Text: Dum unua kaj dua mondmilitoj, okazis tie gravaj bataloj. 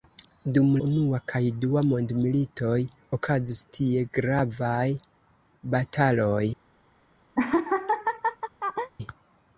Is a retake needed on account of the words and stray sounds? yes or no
yes